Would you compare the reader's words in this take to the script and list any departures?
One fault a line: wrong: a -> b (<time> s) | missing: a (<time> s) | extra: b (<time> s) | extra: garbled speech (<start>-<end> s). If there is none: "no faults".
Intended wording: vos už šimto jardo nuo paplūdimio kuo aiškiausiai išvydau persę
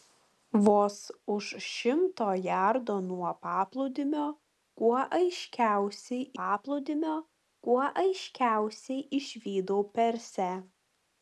extra: paplūdimio kuo aiškiausiai (6.4 s)